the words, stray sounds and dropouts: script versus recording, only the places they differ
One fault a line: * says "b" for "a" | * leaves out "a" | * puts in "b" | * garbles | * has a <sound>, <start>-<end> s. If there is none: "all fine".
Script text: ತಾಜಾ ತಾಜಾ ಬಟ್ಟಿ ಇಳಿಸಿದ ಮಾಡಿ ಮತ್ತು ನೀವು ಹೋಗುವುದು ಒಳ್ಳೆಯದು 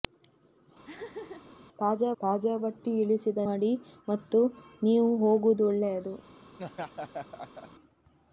* has a laugh, 0.8-1.6 s
* has a laugh, 6.5-7.7 s